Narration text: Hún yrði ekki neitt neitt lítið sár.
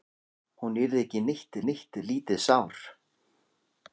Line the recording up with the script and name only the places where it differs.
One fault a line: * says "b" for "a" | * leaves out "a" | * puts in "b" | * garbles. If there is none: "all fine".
all fine